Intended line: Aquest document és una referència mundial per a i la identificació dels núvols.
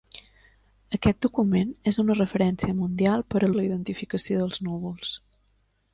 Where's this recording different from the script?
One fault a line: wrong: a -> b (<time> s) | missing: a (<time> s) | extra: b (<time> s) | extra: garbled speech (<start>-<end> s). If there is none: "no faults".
no faults